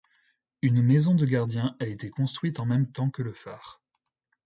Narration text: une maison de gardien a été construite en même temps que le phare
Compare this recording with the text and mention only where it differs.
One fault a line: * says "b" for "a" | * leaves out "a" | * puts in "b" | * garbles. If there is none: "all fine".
all fine